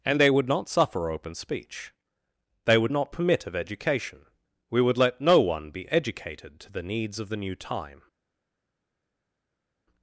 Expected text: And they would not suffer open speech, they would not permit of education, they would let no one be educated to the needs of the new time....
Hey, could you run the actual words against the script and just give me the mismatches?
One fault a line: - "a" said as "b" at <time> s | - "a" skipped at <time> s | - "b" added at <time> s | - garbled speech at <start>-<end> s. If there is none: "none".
- "they" said as "we" at 4.7 s